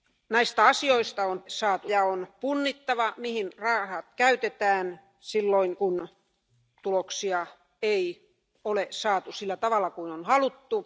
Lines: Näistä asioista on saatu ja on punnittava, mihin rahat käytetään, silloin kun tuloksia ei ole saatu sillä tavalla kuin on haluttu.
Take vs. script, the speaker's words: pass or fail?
pass